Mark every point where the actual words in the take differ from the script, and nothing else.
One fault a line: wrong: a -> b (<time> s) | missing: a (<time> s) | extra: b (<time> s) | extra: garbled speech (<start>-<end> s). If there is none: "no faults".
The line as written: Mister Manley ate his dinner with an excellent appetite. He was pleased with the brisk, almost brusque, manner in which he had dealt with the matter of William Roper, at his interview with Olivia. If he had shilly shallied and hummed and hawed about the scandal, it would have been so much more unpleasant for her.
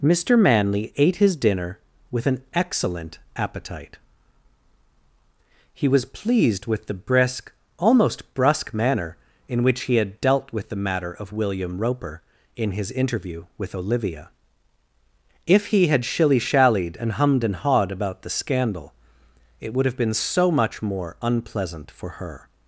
wrong: at -> in (12.5 s)